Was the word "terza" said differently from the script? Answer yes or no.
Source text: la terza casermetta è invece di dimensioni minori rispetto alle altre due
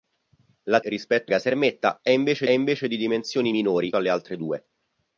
yes